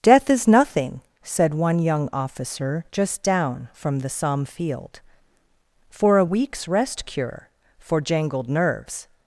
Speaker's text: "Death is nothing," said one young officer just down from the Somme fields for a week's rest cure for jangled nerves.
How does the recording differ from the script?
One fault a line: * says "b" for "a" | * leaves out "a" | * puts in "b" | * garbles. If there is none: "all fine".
* says "field" for "fields"